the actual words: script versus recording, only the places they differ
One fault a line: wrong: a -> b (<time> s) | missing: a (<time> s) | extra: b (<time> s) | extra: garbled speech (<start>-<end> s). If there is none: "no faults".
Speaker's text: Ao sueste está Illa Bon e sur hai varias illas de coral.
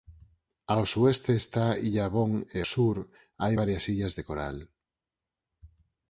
no faults